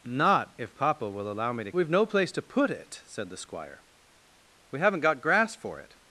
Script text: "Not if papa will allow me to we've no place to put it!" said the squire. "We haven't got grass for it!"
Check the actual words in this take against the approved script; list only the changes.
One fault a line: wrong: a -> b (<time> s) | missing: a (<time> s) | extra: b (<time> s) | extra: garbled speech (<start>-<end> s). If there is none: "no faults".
no faults